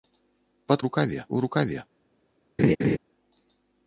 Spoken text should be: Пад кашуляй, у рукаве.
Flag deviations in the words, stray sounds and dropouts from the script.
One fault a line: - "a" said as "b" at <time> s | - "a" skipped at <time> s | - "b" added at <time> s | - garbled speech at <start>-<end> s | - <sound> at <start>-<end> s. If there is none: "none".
- "кашуляй" said as "рукаве" at 0.9 s
- laugh at 2.6-3.0 s